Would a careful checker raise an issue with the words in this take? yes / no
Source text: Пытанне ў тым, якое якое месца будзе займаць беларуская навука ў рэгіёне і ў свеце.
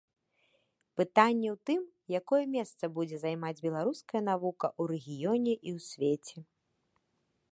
yes